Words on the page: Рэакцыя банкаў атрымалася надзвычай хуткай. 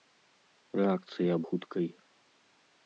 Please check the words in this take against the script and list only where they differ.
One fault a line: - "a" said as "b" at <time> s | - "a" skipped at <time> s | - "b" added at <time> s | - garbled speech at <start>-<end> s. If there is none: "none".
- "банкаў атрымалася надзвычай" skipped at 1.4 s